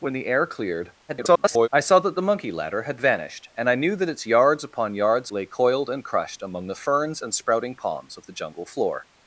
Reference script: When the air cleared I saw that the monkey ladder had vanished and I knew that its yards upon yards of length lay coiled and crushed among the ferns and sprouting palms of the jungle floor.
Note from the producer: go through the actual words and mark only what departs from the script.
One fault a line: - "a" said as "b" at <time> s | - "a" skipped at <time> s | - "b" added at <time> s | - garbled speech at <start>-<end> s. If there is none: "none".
- garbled speech at 1.1-1.7 s
- "of length" skipped at 5.3 s